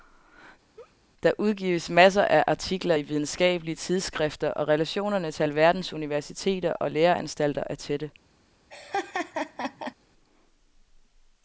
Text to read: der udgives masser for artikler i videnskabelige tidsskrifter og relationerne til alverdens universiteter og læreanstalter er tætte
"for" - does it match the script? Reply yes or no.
no